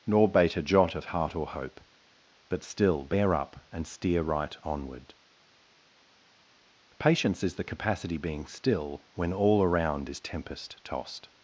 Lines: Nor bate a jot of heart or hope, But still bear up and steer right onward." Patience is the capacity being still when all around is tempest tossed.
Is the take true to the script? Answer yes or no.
yes